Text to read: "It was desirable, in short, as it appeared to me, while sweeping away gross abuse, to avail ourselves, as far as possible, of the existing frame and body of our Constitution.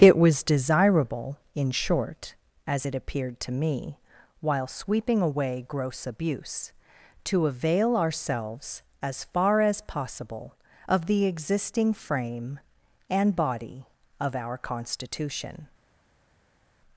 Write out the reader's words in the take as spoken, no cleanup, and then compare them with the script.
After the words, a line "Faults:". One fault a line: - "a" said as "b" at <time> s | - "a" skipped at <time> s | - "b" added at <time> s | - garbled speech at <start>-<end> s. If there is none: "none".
"It was desirable, in short, as it appeared to me, while sweeping away gross abuse, to avail ourselves, as far as possible, of the existing frame and body of our Constitution.
Faults:
none